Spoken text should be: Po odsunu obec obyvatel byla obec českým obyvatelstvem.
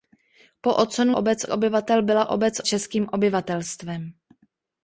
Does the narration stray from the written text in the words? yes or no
no